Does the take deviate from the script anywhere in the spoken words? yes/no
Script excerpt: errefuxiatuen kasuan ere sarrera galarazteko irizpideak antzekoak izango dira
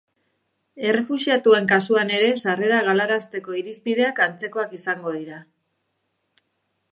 no